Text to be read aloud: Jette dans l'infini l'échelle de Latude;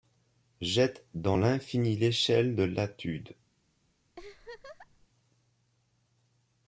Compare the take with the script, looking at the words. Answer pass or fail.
pass